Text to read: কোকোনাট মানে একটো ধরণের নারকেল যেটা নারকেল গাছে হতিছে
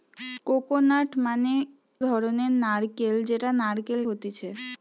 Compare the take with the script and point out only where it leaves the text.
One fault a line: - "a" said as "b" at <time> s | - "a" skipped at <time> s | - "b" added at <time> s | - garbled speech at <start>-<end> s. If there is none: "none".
- "একটো" skipped at 1.5 s
- "গাছে" skipped at 4.0 s